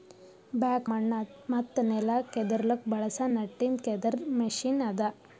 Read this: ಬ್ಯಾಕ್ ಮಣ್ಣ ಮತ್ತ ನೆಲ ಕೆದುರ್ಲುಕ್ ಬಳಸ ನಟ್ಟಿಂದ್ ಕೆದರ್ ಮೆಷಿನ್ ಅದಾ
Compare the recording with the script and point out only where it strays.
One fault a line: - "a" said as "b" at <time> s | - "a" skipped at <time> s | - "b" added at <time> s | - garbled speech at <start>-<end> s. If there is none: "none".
none